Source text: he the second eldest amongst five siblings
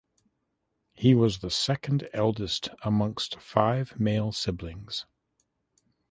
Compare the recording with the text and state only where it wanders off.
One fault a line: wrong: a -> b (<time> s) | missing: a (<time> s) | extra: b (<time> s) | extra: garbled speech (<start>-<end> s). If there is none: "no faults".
extra: was (1.1 s)
extra: male (4.0 s)